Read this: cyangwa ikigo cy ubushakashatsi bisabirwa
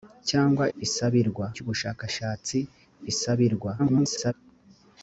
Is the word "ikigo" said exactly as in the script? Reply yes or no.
no